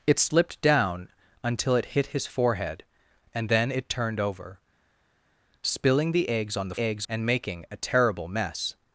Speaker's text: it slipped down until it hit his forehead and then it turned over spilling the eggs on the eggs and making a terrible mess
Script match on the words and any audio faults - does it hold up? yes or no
yes